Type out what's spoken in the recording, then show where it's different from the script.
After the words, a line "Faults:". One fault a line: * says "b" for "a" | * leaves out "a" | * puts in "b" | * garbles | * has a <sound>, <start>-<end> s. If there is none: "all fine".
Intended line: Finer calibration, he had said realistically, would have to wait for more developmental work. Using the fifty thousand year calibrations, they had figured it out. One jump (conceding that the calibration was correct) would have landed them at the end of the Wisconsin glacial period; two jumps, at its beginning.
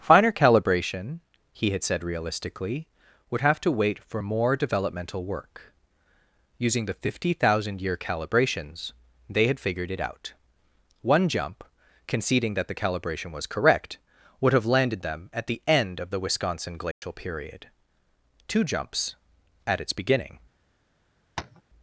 Finer calibration, he had said realistically, would have to wait for more developmental work. Using the fifty thousand year calibrations, they had figured it out. One jump (conceding that the calibration was correct) would have landed them at the end of the Wisconsin glacial period; two jumps, at its beginning.
Faults:
* has a dropout, 16.9-17.0 s
* has a tap, 21.4-21.6 s